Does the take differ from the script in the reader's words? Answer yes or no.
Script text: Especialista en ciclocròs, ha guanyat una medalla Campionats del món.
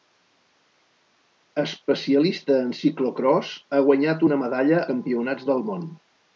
no